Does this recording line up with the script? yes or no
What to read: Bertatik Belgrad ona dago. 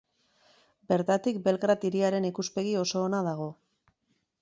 no